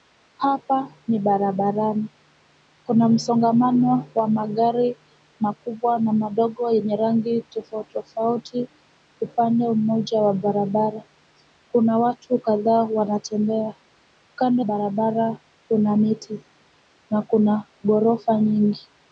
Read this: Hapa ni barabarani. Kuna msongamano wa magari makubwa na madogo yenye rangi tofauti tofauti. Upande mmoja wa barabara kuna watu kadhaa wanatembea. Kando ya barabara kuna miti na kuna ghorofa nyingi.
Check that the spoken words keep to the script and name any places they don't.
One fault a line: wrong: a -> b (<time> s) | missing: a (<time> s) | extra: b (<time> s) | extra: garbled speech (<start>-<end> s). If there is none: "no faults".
missing: ya (14.6 s)